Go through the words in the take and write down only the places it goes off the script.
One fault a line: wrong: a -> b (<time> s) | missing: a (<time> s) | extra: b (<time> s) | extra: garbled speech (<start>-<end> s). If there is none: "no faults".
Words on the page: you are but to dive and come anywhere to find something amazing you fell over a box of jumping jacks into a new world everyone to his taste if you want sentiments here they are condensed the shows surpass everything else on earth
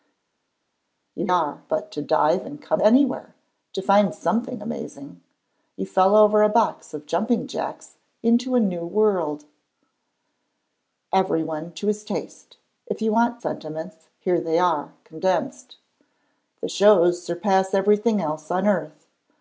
no faults